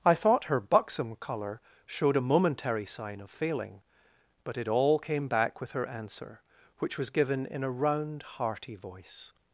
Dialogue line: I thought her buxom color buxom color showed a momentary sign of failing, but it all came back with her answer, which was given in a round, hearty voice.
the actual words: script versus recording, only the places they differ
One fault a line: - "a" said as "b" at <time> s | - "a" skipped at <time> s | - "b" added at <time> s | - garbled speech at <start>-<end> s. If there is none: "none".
- "buxom color" skipped at 1.6 s